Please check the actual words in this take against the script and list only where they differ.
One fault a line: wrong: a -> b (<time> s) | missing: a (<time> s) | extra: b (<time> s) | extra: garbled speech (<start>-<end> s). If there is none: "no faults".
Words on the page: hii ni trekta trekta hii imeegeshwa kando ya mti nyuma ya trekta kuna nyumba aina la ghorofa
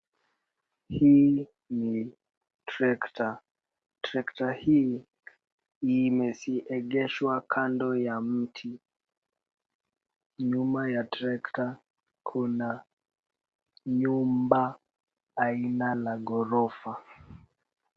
no faults